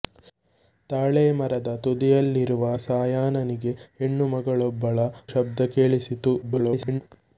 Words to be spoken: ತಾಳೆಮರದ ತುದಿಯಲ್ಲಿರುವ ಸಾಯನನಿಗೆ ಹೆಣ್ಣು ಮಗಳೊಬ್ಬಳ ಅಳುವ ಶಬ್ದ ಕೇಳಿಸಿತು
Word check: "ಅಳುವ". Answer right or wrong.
wrong